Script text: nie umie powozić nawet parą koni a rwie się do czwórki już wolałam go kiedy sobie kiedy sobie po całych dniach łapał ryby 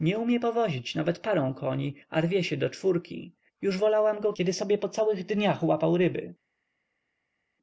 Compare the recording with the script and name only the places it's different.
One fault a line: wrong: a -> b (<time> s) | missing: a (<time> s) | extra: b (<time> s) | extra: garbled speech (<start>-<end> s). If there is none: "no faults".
missing: kiedy sobie (4.8 s)